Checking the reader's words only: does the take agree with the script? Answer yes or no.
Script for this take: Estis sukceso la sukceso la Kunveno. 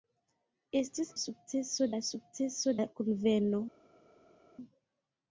yes